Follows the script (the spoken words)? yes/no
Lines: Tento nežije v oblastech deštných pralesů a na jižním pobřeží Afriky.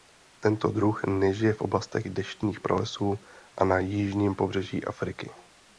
no